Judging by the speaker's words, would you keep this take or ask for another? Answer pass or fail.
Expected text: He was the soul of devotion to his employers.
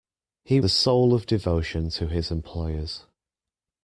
fail